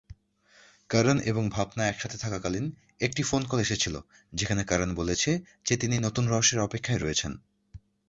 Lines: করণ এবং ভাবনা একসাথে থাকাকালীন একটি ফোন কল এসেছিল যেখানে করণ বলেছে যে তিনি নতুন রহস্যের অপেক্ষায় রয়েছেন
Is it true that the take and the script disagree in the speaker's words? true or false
false